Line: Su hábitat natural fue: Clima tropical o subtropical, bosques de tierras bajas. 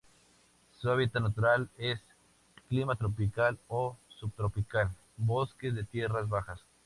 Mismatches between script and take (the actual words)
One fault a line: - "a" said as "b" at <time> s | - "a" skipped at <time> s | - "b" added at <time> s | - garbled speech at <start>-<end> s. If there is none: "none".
- "fue" said as "es" at 1.8 s